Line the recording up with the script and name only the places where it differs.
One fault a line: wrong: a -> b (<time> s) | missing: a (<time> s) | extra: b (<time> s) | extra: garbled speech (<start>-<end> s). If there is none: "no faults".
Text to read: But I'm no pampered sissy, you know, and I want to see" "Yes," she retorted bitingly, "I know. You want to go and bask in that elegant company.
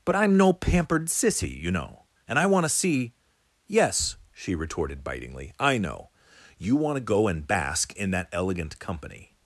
no faults